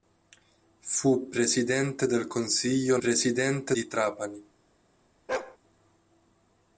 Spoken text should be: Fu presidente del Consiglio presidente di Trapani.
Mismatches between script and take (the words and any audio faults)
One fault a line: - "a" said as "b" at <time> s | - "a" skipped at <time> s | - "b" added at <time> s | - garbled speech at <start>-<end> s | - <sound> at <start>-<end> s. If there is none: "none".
- bark at 5.3-5.6 s